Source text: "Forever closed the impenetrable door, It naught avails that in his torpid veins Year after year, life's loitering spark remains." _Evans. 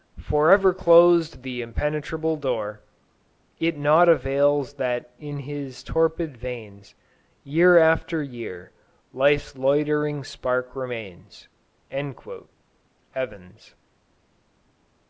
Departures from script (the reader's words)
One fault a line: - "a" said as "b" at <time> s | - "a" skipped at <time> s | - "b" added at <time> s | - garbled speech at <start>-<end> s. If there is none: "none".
none